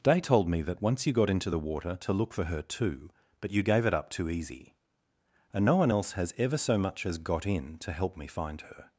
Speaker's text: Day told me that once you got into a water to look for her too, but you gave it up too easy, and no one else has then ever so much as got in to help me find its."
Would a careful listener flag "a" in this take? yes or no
yes